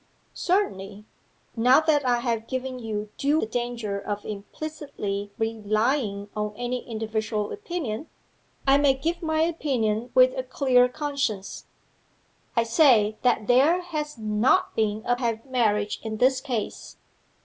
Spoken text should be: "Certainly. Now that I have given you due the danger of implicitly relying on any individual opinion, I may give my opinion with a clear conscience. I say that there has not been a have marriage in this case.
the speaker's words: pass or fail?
pass